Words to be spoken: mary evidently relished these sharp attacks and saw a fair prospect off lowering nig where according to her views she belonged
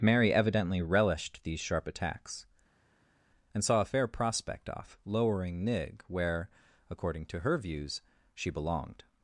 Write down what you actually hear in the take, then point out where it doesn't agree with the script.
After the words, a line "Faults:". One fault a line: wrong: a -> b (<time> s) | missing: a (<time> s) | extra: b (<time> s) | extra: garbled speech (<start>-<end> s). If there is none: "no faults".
mary evidently relished these sharp attacks and saw a fair prospect off lowering nig where according to her views she belonged
Faults:
no faults